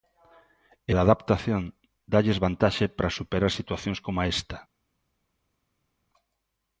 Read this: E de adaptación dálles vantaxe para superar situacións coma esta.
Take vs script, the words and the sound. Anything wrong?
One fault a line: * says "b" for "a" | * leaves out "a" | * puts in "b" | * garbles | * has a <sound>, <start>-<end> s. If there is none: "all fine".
all fine